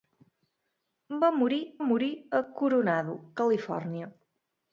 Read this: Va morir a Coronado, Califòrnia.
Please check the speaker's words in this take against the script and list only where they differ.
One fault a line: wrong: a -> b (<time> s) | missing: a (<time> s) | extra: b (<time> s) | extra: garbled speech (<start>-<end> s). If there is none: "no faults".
extra: morir (1.8 s)